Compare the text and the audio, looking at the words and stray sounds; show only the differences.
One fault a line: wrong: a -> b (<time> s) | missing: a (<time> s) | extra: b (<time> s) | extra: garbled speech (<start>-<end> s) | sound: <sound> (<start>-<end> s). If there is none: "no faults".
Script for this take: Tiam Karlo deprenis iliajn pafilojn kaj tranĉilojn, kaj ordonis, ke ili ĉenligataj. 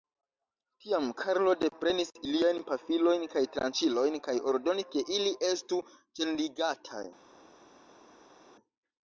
extra: estu (5.5 s)